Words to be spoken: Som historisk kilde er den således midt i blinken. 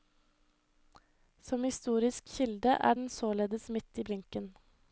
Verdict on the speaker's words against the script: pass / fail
pass